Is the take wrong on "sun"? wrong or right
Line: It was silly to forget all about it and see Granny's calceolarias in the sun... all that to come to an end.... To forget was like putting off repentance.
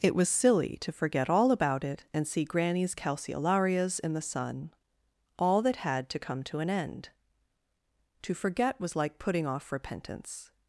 right